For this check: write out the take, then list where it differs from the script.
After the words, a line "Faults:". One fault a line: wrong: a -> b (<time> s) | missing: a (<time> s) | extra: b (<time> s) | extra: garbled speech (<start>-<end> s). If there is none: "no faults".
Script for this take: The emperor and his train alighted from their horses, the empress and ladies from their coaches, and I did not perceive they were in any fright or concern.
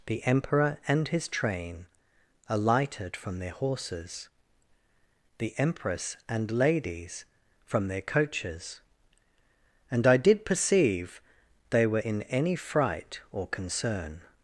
The emperor and his train alighted from their horses, the empress and ladies from their coaches, and I did perceive they were in any fright or concern.
Faults:
missing: not (10.4 s)